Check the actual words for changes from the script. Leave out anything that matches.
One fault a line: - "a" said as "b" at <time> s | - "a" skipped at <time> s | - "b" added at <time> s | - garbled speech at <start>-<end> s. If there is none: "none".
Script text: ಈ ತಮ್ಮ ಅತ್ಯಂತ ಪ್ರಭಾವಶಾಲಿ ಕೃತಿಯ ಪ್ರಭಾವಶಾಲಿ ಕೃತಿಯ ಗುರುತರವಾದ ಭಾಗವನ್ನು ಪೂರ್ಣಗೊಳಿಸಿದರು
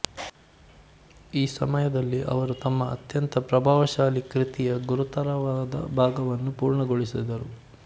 - "ಸಮಯದಲ್ಲಿ ಅವರು" added at 1.5 s
- "ಪ್ರಭಾವಶಾಲಿ ಕೃತಿಯ" skipped at 4.8 s